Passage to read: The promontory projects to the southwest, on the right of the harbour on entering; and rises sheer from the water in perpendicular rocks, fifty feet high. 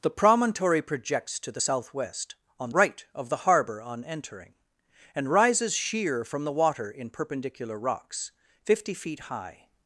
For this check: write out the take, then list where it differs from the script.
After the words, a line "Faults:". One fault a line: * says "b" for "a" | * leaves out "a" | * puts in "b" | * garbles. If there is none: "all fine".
The promontory projects to the southwest, on right of the harbour on entering; and rises sheer from the water in perpendicular rocks, fifty feet high.
Faults:
* leaves out "the"